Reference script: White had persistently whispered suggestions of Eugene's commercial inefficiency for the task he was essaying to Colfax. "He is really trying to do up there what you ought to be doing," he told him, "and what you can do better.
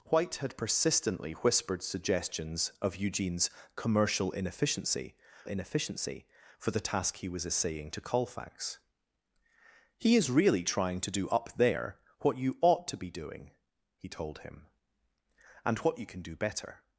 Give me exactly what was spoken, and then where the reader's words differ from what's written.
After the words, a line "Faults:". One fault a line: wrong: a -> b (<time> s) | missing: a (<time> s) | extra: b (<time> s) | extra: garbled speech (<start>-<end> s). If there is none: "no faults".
White had persistently whispered suggestions of Eugene's commercial inefficiency inefficiency for the task he was essaying to Colfax. "He is really trying to do up there what you ought to be doing," he told him, "and what you can do better.
Faults:
extra: inefficiency (5.4 s)